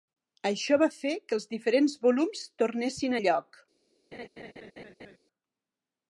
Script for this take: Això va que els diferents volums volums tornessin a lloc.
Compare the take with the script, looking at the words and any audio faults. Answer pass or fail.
fail